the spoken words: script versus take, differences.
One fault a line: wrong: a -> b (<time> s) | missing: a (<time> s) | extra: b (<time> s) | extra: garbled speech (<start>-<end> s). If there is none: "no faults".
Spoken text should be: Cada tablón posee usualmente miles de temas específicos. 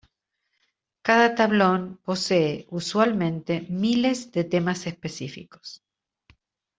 no faults